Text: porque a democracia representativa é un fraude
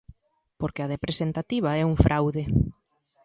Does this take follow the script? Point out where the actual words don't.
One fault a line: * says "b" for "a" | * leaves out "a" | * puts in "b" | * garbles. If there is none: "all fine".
* leaves out "democracia"